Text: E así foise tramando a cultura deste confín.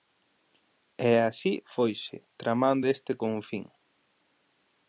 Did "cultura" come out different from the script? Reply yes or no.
yes